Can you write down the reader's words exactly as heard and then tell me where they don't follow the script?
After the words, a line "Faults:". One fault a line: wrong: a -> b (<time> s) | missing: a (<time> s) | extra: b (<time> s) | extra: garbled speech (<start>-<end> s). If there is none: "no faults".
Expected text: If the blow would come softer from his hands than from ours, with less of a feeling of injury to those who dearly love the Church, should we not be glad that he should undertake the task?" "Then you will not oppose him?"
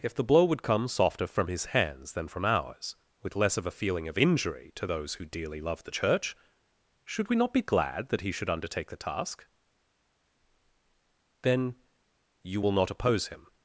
If the blow would come softer from his hands than from ours, with less of a feeling of injury to those who dearly love the Church, should we not be glad that he should undertake the task?" "Then you will not oppose him?"
Faults:
no faults